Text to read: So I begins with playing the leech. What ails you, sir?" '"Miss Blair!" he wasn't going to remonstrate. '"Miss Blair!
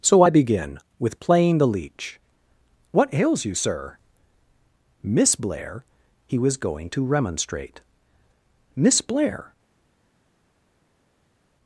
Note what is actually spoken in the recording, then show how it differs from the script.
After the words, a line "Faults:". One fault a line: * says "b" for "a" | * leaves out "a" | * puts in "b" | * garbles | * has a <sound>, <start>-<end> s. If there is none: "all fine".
So I begin with playing the leech. What ails you, sir?" '"Miss Blair!" he was going to remonstrate. '"Miss Blair!
Faults:
* says "begin" for "begins"
* says "was" for "wasn't"